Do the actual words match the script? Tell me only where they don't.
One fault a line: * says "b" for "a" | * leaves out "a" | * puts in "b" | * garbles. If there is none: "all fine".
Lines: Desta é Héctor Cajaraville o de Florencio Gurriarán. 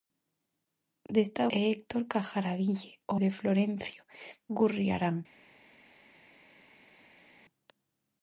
all fine